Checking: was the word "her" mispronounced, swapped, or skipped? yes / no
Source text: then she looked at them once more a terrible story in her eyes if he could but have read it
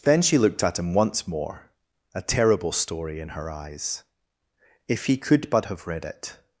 no